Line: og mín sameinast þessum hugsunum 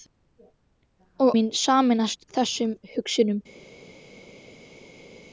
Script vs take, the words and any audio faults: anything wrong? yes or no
no